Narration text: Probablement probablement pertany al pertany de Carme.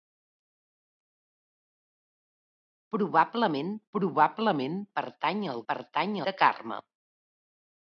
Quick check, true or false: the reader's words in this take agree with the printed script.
true